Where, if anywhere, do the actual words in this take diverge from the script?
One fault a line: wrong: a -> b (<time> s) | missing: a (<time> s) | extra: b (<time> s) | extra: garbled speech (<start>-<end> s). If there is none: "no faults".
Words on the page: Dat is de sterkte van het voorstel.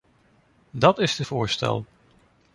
missing: sterkte van het (1.2 s)